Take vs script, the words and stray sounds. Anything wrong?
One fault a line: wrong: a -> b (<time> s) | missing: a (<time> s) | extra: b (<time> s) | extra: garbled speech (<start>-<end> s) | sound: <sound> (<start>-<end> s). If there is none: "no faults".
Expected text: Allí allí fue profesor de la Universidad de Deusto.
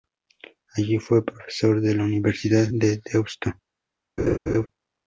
missing: allí (1.0 s)
sound: laugh (4.2-4.7 s)